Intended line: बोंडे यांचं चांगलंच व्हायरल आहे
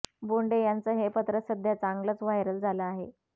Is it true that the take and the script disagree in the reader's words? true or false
true